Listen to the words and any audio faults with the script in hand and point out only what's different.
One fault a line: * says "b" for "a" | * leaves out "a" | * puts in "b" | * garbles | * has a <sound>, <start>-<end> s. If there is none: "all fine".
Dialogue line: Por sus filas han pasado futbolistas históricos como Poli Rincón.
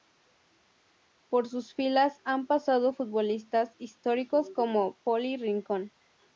all fine